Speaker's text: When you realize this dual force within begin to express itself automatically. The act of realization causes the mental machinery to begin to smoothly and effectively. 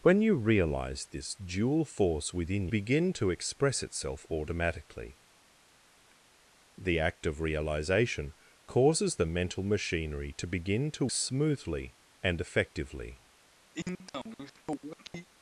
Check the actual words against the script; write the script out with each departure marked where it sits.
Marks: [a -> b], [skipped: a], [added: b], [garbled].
When you realize this dual force within begin to express itself automatically. The act of realization causes the mental machinery to begin to smoothly and effectively.